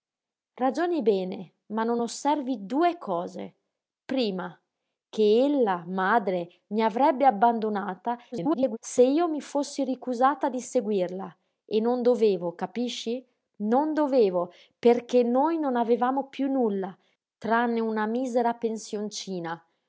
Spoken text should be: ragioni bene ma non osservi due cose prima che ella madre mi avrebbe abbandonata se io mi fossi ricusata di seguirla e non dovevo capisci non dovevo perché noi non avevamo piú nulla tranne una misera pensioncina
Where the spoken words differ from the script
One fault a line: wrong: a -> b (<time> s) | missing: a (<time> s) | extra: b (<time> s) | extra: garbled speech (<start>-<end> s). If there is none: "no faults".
extra: garbled speech (8.3-8.8 s)